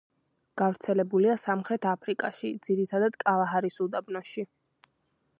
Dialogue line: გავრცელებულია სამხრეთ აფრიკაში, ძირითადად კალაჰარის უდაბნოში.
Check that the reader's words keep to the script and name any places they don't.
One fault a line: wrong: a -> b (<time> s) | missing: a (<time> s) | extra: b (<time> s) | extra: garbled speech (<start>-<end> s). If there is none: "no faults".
no faults